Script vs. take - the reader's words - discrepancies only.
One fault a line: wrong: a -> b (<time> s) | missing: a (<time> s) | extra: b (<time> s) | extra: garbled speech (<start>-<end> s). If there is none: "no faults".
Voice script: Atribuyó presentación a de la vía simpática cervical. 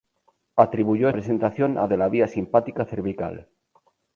no faults